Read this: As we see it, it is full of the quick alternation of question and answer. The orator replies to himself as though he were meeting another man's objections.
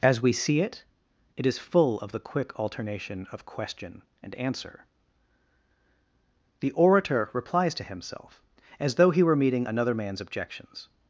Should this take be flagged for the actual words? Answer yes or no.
no